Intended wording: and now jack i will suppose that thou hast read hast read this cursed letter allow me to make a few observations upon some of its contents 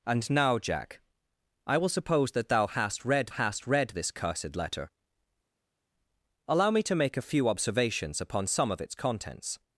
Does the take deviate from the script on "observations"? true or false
false